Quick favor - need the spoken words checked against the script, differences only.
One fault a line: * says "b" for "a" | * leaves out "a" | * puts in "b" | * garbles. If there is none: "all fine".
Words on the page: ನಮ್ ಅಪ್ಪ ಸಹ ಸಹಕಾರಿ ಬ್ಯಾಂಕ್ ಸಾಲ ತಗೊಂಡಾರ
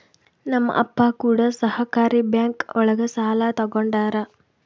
* says "ಕೂಡ" for "ಸಹ"
* puts in "ಒಳಗ"